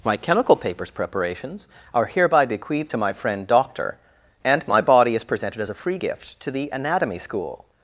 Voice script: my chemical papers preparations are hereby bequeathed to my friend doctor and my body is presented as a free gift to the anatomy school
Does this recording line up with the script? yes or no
yes